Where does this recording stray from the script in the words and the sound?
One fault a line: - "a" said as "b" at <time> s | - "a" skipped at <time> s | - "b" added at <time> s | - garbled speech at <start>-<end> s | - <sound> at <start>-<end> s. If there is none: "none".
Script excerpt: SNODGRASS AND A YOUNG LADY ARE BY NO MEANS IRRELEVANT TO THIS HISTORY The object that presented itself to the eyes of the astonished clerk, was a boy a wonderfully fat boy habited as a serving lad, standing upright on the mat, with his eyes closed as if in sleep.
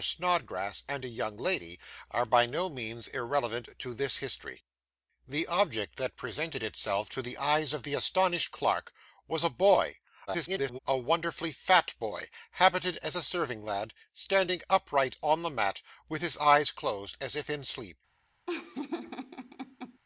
- garbled speech at 10.3-10.8 s
- laugh at 18.5-20.0 s